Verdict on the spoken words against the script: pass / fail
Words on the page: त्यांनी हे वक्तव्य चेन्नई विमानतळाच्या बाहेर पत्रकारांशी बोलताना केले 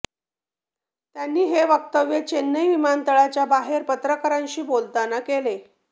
pass